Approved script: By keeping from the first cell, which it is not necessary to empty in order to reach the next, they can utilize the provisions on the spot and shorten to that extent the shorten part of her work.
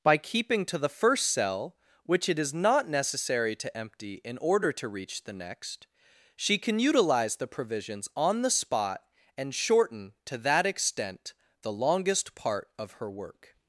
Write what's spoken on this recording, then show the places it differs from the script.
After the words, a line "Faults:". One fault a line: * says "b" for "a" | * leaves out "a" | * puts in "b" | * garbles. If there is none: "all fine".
By keeping to the first cell, which it is not necessary to empty in order to reach the next, she can utilize the provisions on the spot and shorten to that extent the longest part of her work.
Faults:
* says "to" for "from"
* says "she" for "they"
* says "longest" for "shorten"